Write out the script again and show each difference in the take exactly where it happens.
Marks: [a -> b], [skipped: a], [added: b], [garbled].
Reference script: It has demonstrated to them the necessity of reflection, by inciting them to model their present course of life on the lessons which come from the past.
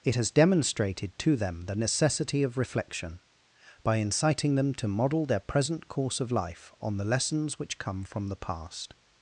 It has demonstrated to them the necessity of reflection, by inciting them to model their present course of life on the lessons which come from the past.